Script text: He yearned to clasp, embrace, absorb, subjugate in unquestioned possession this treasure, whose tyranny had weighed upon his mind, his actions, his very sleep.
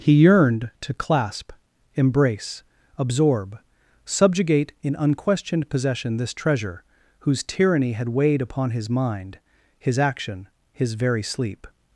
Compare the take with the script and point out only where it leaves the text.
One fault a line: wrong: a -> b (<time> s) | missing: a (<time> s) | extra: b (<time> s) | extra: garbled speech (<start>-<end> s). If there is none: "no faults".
wrong: actions -> action (10.0 s)